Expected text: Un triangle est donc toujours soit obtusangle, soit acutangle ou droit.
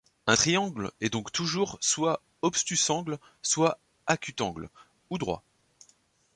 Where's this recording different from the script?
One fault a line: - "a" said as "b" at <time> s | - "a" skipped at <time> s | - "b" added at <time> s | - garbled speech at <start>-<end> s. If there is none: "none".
none